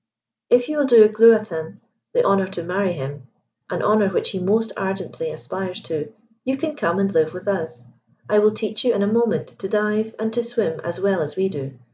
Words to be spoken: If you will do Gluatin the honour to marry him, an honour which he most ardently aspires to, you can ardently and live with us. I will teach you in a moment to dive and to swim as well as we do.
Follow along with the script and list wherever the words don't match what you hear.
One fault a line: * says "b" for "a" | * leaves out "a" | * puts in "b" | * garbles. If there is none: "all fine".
* says "come" for "ardently"